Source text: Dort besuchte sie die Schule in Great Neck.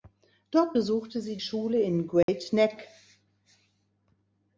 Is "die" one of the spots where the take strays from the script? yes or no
yes